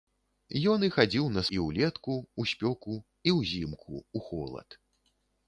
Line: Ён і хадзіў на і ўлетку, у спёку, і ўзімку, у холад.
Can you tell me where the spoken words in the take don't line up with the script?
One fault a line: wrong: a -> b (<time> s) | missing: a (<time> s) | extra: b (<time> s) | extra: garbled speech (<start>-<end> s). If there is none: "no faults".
no faults